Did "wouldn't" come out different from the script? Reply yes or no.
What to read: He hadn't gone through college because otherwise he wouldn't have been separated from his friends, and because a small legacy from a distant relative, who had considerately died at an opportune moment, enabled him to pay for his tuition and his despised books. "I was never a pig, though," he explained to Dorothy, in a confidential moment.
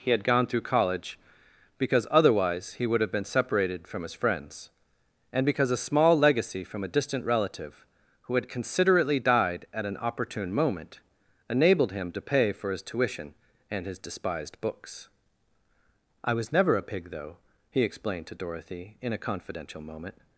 yes